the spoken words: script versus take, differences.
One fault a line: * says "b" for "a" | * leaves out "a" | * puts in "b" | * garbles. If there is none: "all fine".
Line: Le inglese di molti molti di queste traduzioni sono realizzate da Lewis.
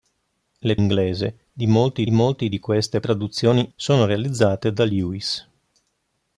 all fine